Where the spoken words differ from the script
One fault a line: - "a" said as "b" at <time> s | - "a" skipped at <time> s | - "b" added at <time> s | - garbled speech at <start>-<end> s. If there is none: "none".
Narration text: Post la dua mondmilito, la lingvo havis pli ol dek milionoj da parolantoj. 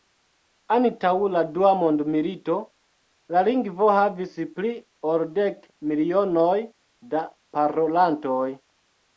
- "Post" said as "Antaŭ" at 0.8 s